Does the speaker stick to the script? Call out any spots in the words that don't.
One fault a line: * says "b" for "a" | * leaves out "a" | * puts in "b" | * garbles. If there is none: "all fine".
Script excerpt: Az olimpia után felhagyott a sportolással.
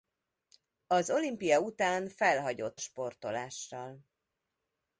* leaves out "a"